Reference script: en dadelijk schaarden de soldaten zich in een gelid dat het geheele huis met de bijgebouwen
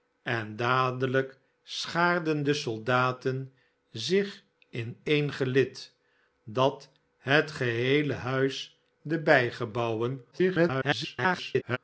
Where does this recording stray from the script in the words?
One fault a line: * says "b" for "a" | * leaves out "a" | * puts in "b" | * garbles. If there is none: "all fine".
* leaves out "met"
* garbles